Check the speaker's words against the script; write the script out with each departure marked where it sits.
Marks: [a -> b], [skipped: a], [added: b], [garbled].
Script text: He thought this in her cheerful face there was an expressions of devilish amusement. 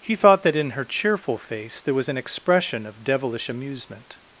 He thought [this -> that] in her cheerful face there was an [expressions -> expression] of devilish amusement.